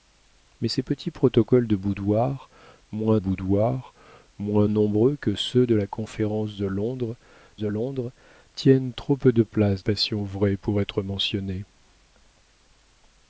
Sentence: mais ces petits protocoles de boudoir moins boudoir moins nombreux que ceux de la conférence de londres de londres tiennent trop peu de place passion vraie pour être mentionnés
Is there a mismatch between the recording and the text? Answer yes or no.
no